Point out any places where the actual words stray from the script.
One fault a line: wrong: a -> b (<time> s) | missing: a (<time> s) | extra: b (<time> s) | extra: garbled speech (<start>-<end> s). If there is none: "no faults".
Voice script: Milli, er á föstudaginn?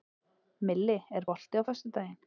extra: bolti (1.3 s)